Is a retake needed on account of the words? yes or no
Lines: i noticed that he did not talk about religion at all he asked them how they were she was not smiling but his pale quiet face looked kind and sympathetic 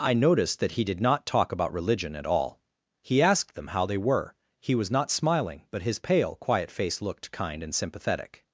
yes